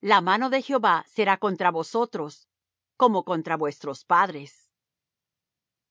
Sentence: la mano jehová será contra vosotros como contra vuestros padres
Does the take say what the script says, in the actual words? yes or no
no